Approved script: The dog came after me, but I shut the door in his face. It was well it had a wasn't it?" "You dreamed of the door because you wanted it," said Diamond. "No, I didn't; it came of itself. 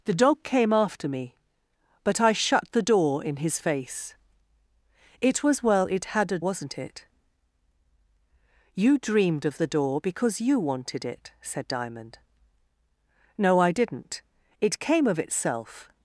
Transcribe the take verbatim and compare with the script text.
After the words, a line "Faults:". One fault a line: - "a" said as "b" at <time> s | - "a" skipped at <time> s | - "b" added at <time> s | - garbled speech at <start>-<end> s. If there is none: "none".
The dog came after me, but I shut the door in his face. It was well it had a wasn't it?" "You dreamed of the door because you wanted it," said Diamond. "No, I didn't; it came of itself.
Faults:
none